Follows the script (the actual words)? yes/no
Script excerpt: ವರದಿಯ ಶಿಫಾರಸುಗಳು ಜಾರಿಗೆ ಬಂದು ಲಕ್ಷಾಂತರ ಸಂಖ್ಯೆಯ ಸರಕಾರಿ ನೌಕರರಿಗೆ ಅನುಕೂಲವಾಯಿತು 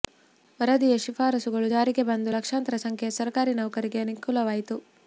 yes